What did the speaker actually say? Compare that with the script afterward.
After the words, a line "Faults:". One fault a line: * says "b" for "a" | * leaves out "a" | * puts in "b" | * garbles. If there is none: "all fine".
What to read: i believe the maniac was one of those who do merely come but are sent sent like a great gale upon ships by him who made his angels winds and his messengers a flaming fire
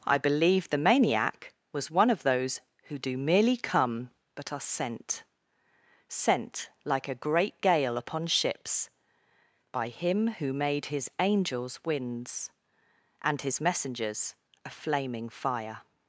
i believe the maniac was one of those who do merely come but are sent sent like a great gale upon ships by him who made his angels winds and his messengers a flaming fire
Faults:
all fine